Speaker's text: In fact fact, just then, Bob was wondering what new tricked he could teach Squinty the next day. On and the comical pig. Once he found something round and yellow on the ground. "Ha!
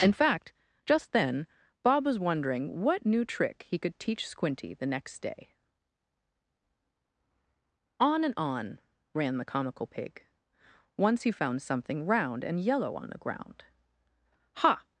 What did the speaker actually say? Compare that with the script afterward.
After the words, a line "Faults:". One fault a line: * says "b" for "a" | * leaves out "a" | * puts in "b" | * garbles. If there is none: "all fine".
In fact, just then, Bob was wondering what new trick he could teach Squinty the next day. On and on ran the comical pig. Once he found something round and yellow on the ground. "Ha!
Faults:
* leaves out "fact"
* says "trick" for "tricked"
* puts in "on ran"